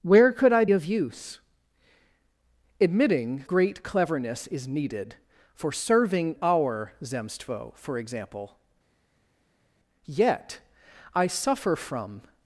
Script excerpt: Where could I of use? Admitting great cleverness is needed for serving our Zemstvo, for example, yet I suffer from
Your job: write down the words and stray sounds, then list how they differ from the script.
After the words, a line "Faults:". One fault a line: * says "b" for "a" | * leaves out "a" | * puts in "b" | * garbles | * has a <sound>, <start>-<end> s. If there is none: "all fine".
Where could I of use? Admitting great cleverness is needed for serving our Zemstvo, for example, yet I suffer from
Faults:
all fine